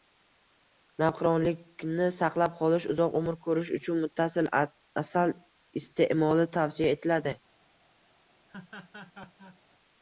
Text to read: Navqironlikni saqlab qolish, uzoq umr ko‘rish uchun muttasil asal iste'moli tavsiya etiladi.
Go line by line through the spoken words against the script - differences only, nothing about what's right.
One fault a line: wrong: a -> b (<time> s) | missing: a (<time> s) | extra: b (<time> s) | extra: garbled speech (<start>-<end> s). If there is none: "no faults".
no faults